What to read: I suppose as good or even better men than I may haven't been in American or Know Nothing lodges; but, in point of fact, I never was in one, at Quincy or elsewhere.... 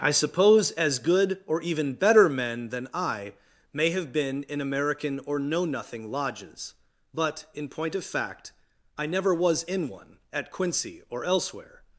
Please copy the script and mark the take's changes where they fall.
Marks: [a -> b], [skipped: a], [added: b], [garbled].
I suppose as good or even better men than I may [haven't -> have] been in American or Know Nothing lodges; but, in point of fact, I never was in one, at Quincy or elsewhere....